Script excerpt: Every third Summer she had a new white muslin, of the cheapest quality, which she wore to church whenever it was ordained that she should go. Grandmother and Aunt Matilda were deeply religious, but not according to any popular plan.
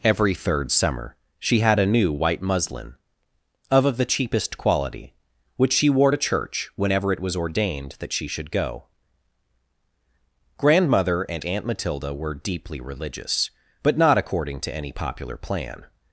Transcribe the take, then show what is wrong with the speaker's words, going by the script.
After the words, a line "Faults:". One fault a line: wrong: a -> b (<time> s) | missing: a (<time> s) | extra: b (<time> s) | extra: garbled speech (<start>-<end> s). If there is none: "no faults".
Every third Summer she had a new white muslin, of of the cheapest quality, which she wore to church whenever it was ordained that she should go. Grandmother and Aunt Matilda were deeply religious, but not according to any popular plan.
Faults:
extra: of (3.9 s)